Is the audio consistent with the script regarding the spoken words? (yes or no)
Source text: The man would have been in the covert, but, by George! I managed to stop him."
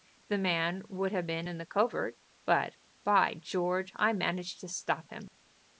yes